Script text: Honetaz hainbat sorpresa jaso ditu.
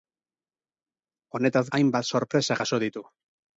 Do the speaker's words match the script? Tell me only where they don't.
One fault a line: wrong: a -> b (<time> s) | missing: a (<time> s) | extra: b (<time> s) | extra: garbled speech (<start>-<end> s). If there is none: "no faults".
no faults